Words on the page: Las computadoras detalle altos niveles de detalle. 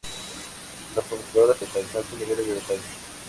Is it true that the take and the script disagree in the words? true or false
false